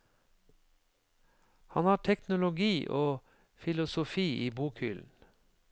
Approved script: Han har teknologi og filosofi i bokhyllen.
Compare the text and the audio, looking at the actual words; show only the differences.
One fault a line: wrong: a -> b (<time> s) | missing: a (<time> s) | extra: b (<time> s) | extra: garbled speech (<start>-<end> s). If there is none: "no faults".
no faults